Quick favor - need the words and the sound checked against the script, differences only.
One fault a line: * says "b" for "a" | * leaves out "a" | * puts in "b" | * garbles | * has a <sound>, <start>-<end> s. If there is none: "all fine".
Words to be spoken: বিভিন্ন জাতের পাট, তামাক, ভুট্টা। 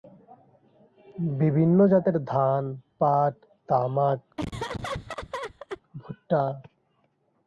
* puts in "ধান"
* has a laugh, 4.4-5.8 s